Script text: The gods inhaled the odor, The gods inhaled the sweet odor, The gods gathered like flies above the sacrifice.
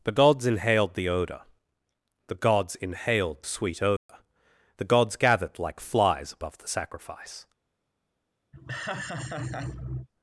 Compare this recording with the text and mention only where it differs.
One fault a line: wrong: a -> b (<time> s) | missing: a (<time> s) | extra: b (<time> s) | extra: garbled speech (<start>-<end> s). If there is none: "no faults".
missing: the (3.4 s)